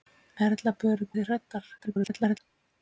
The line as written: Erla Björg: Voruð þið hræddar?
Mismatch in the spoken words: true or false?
true